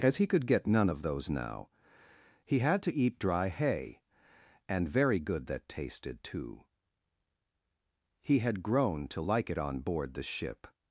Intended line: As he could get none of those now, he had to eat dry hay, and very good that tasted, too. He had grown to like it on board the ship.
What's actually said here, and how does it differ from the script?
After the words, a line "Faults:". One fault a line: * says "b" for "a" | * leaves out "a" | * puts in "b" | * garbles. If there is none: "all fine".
As he could get none of those now, he had to eat dry hay, and very good that tasted, too. He had grown to like it on board the ship.
Faults:
all fine